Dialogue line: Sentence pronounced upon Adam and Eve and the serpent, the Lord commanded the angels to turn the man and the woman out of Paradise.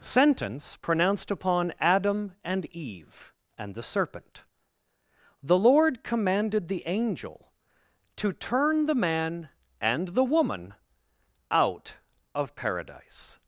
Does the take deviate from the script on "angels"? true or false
true